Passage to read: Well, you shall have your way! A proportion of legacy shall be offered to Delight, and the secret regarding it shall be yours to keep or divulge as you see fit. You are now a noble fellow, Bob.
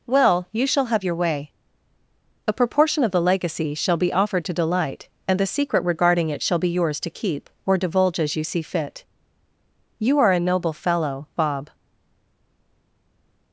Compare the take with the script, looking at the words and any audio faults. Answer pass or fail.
fail